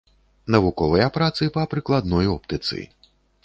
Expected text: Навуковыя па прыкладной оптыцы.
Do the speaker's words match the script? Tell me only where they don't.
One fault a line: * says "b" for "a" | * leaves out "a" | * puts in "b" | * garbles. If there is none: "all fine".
* puts in "працы"